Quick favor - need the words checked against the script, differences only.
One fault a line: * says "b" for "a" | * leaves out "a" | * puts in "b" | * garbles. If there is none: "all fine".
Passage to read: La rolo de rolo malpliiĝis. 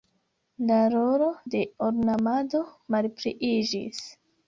* says "ornamado" for "rolo"